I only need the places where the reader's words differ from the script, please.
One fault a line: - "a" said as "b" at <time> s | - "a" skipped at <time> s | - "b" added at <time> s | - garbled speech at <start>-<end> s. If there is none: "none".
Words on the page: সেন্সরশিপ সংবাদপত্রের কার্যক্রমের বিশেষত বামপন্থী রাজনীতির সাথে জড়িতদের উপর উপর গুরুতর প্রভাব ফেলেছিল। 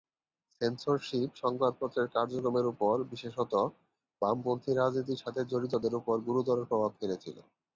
- "উপর" added at 2.7 s
- "উপর" skipped at 6.1 s